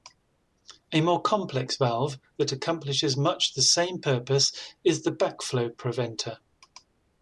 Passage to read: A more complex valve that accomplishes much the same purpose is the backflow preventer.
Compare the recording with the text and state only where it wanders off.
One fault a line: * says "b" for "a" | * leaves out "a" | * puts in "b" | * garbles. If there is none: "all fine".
all fine